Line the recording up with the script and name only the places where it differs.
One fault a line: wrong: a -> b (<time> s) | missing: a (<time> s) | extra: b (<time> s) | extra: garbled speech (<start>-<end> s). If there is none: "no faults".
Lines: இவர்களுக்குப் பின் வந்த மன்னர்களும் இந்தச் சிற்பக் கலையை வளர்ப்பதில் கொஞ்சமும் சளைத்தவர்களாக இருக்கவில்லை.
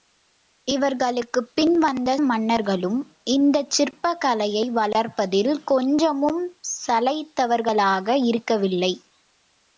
no faults